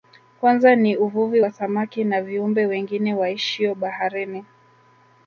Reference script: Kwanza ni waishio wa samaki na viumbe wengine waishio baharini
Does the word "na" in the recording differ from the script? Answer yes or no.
no